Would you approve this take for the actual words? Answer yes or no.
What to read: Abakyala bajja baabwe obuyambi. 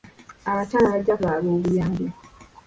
yes